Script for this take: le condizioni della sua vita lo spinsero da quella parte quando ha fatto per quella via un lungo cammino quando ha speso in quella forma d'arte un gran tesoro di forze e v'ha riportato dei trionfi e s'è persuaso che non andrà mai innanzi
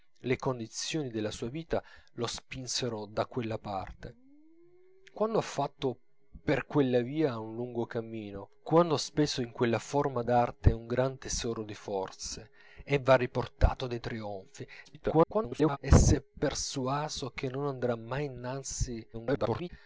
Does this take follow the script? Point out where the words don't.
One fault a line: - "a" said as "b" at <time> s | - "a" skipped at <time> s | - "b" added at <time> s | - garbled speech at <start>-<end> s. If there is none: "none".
- garbled speech at 14.8-15.8 s
- garbled speech at 19.1-19.7 s